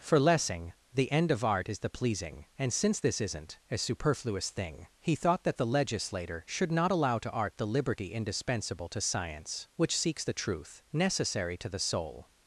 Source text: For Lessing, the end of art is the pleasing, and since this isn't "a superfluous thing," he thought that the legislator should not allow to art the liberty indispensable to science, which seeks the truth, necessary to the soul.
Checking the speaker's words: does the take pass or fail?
pass